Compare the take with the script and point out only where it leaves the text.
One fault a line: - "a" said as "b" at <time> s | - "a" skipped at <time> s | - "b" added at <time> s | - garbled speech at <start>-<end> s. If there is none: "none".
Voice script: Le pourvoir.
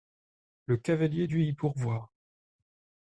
- "cavalier dut y" added at 0.8 s